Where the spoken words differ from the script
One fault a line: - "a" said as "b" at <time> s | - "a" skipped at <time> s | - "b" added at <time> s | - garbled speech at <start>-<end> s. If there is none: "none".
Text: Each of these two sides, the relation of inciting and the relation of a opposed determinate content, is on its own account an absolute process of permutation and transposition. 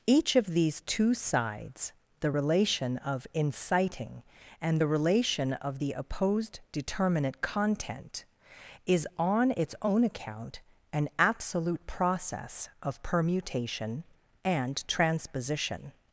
- "a" said as "the" at 5.8 s